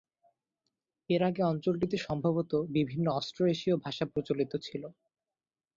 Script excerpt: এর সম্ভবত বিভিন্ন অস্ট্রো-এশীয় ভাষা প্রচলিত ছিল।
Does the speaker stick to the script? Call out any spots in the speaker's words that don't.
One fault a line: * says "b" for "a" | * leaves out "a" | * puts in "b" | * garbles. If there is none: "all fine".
* puts in "আগে অঞ্চলটিতে"